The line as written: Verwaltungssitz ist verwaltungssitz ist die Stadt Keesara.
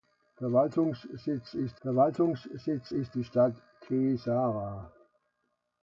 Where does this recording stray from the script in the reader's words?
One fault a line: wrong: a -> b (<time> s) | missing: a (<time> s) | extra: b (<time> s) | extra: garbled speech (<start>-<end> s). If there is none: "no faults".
no faults